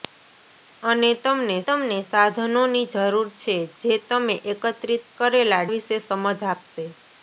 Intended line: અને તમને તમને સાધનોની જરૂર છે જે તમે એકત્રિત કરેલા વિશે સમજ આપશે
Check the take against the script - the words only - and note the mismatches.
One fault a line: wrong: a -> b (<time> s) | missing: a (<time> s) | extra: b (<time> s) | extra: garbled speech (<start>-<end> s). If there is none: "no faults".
no faults